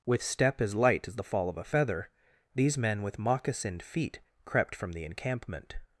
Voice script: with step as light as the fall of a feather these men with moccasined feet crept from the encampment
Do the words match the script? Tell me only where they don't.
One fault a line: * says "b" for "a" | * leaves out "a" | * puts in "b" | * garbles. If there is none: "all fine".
all fine